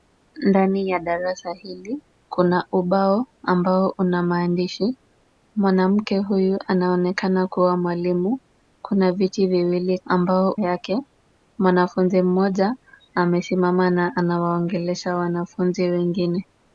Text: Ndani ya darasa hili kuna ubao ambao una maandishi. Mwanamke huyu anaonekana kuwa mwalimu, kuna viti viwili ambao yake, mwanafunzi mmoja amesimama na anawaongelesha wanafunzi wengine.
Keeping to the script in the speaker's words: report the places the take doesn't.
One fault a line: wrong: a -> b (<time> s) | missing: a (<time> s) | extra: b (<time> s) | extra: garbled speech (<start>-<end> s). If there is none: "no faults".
no faults